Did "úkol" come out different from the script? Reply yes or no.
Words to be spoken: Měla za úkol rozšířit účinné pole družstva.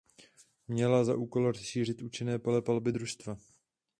no